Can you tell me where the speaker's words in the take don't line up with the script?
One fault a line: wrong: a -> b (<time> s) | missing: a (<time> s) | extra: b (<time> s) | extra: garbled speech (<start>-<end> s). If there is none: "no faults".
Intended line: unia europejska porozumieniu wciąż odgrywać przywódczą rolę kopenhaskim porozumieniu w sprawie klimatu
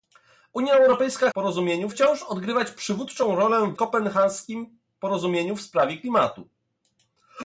no faults